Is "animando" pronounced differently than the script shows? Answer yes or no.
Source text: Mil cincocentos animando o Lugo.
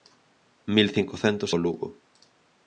yes